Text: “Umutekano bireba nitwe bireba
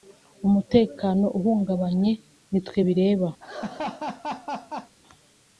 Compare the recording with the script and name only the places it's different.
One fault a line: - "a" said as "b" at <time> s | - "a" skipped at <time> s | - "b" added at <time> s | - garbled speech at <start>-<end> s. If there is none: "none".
- "bireba" said as "uhungabanye" at 1.4 s